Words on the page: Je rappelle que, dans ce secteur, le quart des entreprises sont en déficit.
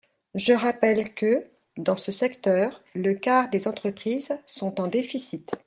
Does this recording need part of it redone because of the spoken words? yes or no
no